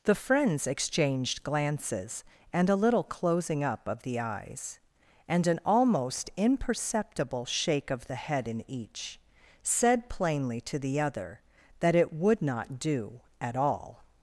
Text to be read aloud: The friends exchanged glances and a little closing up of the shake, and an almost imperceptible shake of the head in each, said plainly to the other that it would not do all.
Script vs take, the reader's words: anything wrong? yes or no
yes